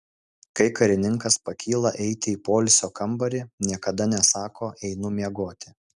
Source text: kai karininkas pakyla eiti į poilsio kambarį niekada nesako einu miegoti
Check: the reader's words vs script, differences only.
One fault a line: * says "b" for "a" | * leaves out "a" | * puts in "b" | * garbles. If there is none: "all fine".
all fine